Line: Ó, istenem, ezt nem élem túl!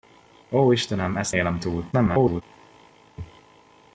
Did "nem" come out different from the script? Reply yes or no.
yes